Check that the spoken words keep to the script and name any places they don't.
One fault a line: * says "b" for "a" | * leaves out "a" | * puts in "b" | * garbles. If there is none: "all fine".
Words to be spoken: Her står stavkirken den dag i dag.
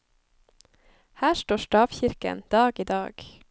* leaves out "den"